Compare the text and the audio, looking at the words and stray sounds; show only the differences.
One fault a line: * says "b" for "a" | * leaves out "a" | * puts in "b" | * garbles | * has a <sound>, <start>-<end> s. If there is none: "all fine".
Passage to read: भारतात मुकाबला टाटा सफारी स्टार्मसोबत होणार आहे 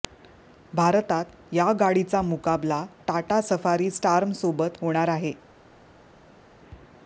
* puts in "या गाडीचा"